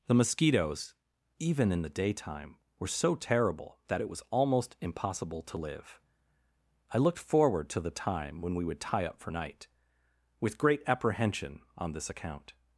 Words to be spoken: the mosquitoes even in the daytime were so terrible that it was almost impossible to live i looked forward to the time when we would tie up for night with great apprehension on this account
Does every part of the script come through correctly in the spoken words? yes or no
yes